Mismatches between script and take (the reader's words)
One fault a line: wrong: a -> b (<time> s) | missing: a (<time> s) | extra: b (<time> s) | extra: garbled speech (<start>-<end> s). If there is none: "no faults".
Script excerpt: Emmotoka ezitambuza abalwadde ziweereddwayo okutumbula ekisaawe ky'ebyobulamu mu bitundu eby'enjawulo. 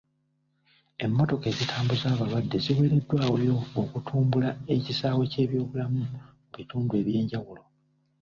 no faults